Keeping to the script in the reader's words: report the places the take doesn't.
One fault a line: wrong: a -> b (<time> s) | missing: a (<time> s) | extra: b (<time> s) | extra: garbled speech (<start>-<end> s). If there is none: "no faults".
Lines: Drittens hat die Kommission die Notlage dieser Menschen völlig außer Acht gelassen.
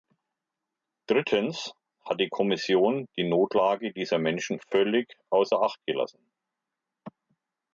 no faults